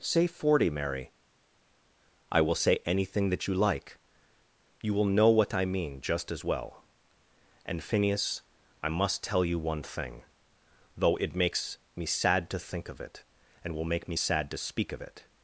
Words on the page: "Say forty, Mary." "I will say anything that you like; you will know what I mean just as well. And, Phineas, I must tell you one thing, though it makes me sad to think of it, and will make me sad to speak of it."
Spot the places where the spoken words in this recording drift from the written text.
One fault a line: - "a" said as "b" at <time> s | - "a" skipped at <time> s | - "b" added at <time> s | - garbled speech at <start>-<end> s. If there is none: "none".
none